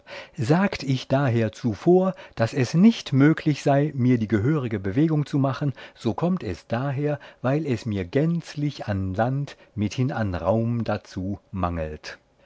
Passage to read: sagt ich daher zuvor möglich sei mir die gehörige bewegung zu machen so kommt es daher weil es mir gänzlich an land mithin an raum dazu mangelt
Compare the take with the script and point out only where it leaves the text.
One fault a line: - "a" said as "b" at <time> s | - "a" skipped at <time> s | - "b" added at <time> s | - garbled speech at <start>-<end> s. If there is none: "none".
- "daß es nicht" added at 2.4 s